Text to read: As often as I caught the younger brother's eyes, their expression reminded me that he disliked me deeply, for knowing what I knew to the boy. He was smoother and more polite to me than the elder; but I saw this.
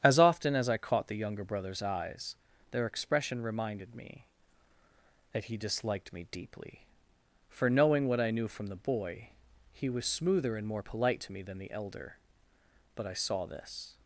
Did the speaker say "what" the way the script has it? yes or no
yes